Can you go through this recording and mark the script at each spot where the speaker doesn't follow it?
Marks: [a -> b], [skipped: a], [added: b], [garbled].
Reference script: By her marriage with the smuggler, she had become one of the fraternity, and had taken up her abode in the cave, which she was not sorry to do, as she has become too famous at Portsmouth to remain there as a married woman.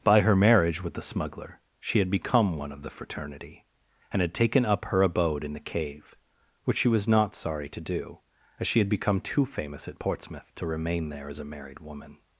By her marriage with the smuggler, she had become one of the fraternity, and had taken up her abode in the cave, which she was not sorry to do, as she [has -> had] become too famous at Portsmouth to remain there as a married woman.